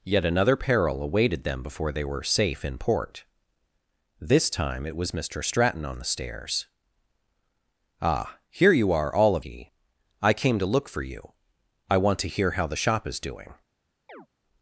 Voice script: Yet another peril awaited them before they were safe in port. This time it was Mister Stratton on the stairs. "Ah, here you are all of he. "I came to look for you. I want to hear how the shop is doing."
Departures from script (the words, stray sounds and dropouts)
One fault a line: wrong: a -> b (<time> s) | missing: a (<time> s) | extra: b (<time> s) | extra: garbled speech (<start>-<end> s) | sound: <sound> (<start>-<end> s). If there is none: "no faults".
sound: chirp (14.1-14.3 s)